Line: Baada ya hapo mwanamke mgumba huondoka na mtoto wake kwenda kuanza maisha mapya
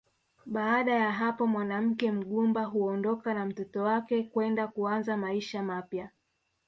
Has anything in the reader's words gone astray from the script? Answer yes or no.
no